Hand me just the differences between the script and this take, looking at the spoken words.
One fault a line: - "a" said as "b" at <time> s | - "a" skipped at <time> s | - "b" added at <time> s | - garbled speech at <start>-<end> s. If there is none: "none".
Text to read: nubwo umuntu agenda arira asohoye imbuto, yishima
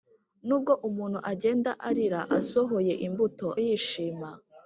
none